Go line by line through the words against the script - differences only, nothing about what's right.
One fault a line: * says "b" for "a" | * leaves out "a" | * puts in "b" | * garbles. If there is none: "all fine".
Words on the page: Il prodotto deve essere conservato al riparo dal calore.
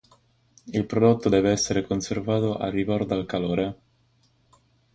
all fine